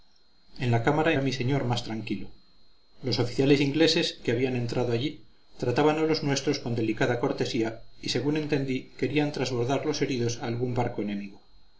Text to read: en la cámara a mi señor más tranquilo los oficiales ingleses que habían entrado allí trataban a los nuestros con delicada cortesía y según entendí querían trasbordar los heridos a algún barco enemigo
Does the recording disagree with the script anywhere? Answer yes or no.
no